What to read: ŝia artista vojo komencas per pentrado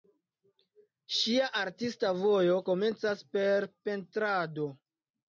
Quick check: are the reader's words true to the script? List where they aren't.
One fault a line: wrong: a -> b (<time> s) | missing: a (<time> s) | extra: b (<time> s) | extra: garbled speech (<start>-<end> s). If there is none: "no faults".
no faults